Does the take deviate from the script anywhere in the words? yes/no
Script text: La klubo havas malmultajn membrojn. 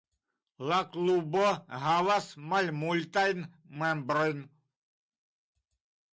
no